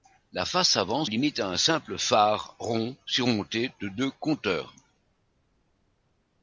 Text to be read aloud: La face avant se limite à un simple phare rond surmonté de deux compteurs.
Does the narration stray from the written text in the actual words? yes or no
yes